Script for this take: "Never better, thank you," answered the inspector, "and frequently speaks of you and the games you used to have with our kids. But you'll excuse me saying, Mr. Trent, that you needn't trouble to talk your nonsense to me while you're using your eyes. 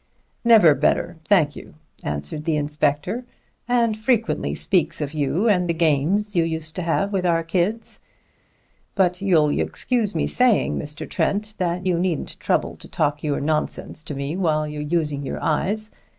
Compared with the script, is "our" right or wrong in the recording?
right